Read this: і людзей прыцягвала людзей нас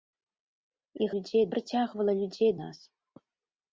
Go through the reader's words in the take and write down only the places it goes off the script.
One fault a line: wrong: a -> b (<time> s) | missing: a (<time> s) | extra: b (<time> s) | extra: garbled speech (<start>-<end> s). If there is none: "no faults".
no faults